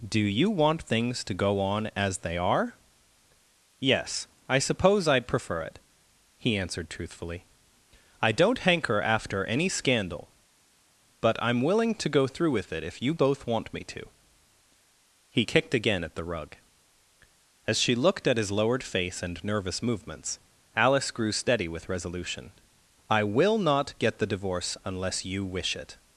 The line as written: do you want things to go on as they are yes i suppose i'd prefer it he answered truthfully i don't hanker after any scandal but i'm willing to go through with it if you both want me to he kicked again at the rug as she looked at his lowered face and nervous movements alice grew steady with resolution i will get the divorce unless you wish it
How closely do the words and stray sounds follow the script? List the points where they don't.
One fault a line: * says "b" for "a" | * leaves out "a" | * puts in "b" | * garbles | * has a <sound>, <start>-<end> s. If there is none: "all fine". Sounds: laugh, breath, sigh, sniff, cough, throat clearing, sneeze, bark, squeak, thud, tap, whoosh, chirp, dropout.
* puts in "not"